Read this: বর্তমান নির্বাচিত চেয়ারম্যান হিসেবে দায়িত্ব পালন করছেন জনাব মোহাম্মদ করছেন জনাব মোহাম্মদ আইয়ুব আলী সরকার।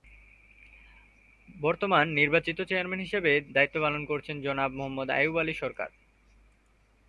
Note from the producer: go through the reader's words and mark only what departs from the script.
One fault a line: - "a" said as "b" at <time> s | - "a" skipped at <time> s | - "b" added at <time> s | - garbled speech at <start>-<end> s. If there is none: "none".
- "করছেন জনাব মোহাম্মদ" skipped at 5.1 s